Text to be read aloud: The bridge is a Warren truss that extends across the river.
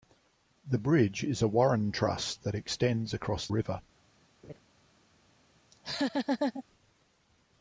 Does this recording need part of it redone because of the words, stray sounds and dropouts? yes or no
yes